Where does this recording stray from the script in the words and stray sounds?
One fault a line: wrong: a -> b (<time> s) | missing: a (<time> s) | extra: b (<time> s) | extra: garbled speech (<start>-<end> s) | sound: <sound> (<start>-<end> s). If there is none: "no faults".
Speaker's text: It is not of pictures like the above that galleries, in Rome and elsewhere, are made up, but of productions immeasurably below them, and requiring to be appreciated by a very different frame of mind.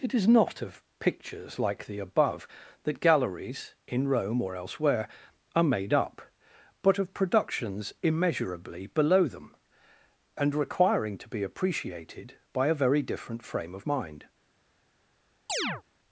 wrong: and -> or (4.4 s)
sound: chirp (15.5-15.8 s)